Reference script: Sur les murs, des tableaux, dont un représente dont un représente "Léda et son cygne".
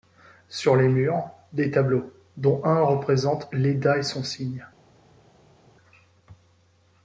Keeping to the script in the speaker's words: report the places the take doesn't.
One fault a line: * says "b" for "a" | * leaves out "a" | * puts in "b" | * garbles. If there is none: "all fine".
* leaves out "dont un représente"